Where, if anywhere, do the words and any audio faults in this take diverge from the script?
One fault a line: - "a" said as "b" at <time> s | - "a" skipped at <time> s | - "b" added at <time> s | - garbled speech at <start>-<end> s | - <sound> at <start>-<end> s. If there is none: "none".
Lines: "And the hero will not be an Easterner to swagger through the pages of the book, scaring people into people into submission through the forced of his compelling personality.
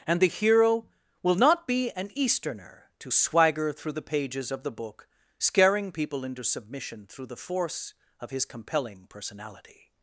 - "people into" skipped at 6.4 s
- "forced" said as "force" at 7.4 s